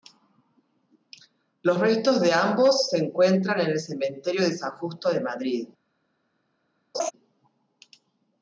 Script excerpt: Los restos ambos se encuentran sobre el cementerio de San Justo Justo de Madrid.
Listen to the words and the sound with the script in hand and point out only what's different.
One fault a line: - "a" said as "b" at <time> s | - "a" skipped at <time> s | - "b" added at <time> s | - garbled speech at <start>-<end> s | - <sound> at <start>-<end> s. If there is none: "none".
- "de" added at 2.2 s
- "sobre" said as "en" at 3.6 s
- "Justo" skipped at 5.1 s
- laugh at 6.9-7.1 s